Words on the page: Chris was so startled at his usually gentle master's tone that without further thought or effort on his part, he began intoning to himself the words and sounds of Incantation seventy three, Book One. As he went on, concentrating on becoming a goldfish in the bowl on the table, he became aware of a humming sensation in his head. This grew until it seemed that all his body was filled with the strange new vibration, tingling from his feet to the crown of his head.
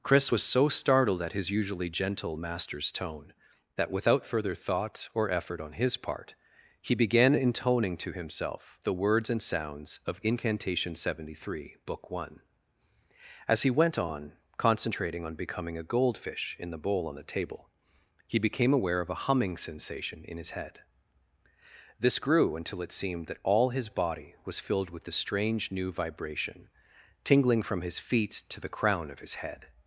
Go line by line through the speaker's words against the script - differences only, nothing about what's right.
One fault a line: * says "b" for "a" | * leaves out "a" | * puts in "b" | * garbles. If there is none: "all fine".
all fine